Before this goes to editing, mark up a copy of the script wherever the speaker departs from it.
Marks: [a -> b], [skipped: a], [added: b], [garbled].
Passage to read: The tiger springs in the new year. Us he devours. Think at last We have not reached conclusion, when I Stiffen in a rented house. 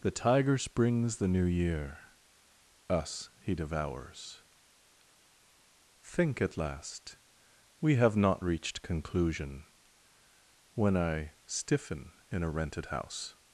The tiger springs [skipped: in] the new year. Us he devours. Think at last We have not reached conclusion, when I Stiffen in a rented house.